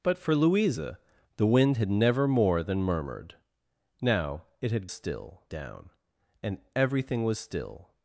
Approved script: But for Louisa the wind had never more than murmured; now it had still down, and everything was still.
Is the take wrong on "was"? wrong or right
right